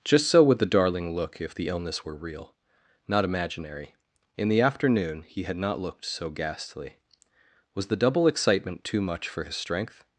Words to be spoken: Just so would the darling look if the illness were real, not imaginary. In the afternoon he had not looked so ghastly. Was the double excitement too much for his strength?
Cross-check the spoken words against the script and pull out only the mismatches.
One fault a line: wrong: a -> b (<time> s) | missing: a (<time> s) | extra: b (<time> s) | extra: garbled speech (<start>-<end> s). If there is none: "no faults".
no faults